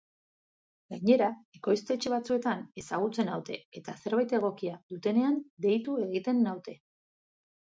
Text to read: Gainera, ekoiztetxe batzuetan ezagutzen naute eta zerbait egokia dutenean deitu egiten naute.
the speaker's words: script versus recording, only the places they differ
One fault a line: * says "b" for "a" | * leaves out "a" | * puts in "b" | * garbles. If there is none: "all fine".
all fine